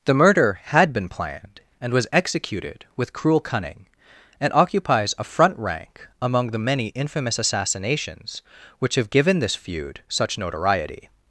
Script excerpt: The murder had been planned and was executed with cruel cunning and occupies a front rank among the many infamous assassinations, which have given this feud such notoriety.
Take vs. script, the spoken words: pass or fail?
pass